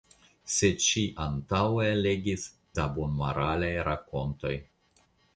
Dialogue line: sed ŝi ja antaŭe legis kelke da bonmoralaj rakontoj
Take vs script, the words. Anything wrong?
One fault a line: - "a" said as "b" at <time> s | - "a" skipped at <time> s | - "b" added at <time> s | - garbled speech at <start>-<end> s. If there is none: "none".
- "ja" skipped at 1.0 s
- "kelke" skipped at 2.5 s